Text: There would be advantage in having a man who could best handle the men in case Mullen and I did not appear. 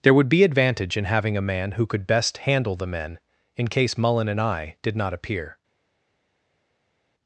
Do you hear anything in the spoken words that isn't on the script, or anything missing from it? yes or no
no